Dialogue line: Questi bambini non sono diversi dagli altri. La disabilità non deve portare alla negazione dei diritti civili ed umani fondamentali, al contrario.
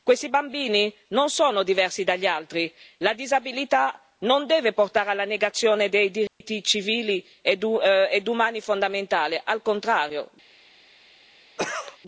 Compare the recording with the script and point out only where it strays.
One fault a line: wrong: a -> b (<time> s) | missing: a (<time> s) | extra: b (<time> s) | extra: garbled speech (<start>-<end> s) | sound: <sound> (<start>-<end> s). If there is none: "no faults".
sound: dropout (6.3-6.4 s)
sound: cough (11.6-12.0 s)